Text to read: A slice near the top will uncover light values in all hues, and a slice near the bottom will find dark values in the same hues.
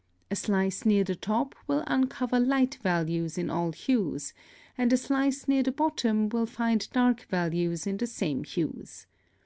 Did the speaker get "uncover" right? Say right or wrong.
right